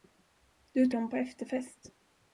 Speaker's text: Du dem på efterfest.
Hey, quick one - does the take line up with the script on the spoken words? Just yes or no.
yes